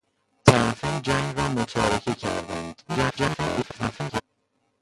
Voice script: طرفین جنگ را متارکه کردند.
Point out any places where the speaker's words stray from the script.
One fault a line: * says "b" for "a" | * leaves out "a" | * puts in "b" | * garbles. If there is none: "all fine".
* garbles